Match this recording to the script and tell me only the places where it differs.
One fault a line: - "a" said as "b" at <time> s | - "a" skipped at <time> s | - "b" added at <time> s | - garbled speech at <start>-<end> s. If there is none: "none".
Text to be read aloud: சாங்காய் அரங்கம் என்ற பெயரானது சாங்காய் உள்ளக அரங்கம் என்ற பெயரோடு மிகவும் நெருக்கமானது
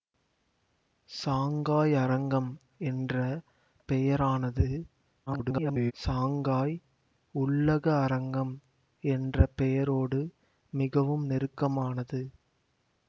- garbled speech at 5.3-5.9 s